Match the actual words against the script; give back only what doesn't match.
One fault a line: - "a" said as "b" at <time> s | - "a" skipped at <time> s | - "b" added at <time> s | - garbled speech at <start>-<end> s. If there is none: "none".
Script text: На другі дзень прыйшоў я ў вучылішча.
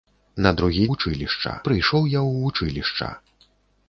- "дзень" said as "вучылішча" at 0.9 s